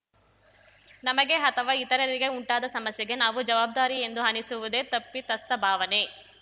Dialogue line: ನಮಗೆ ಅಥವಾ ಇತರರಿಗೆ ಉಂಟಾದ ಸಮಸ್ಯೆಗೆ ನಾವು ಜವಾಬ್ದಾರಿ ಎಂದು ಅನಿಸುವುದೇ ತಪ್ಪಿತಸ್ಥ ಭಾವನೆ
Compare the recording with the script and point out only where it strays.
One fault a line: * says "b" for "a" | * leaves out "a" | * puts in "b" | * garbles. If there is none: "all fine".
all fine